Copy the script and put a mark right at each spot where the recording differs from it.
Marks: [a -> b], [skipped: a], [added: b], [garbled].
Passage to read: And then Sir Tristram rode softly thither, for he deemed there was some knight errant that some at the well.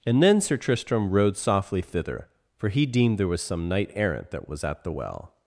And then Sir Tristram rode softly thither, for he deemed there was some knight errant that [some -> was] at the well.